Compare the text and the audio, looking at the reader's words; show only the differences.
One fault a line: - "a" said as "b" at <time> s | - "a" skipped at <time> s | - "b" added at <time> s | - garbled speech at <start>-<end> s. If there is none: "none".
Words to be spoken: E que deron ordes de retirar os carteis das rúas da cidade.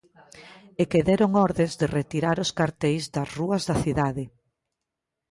none